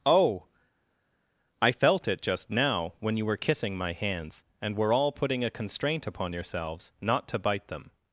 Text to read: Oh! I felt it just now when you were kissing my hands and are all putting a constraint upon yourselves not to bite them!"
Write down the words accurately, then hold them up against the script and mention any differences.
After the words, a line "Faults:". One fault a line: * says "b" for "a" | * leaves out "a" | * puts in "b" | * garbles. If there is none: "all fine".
Oh! I felt it just now when you were kissing my hands and were all putting a constraint upon yourselves not to bite them!"
Faults:
* says "were" for "are"